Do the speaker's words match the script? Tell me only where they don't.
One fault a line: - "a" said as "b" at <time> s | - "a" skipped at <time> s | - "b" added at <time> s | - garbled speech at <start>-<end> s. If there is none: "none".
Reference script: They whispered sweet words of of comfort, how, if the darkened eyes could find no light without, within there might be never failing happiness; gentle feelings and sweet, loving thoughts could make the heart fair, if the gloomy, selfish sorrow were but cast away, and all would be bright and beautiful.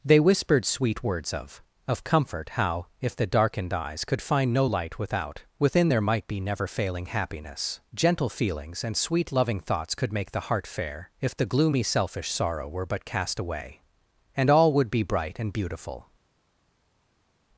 none